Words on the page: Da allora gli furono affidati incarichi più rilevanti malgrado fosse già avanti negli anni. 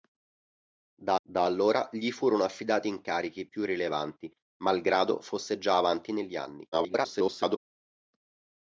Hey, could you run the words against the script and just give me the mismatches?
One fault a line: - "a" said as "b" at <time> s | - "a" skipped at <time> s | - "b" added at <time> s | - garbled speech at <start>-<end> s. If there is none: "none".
- "da" added at 1.3 s
- garbled speech at 6.7-7.6 s